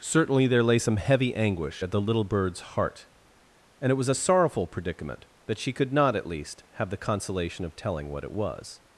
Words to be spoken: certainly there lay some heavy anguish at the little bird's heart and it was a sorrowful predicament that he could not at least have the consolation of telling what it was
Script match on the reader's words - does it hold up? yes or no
no